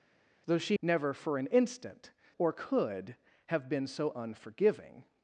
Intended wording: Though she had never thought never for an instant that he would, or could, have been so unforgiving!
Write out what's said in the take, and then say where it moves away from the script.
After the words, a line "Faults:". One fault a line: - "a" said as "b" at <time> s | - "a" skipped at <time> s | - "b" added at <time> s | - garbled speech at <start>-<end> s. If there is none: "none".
Though she never for an instant or could, have been so unforgiving!
Faults:
- "had" skipped at 0.8 s
- "thought never" skipped at 1.1 s
- "that he would" skipped at 2.1 s